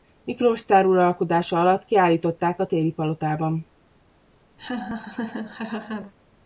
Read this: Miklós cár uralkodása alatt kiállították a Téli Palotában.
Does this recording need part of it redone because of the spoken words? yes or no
no